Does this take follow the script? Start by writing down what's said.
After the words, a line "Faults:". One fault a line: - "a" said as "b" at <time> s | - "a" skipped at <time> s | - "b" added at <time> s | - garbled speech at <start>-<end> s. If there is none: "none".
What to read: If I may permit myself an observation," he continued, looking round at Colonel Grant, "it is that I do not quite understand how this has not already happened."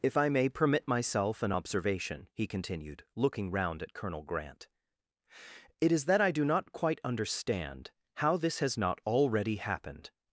If I may permit myself an observation," he continued, looking round at Colonel Grant, "it is that I do not quite understand how this has not already happened."
Faults:
none